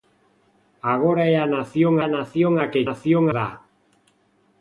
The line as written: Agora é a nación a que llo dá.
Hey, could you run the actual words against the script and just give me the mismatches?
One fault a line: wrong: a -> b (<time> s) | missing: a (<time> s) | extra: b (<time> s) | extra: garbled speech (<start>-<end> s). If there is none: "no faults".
extra: nación a (2.2 s)
wrong: llo -> nación (2.9 s)